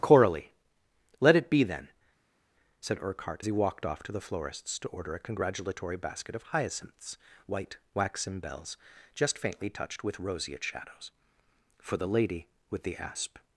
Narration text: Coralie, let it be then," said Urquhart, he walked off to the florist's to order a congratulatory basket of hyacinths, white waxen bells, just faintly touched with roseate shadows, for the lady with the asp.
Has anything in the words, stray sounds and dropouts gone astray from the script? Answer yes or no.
no